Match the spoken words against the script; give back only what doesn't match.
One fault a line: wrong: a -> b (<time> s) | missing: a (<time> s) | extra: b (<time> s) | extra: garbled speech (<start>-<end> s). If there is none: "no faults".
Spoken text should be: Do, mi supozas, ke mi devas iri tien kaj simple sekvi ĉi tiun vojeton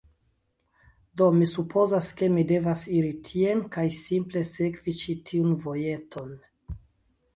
no faults